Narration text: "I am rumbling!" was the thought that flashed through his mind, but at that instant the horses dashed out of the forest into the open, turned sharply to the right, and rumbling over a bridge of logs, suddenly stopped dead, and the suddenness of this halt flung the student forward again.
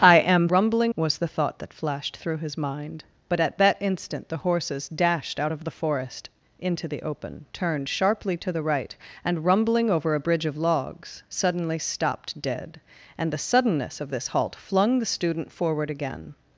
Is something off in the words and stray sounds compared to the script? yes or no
no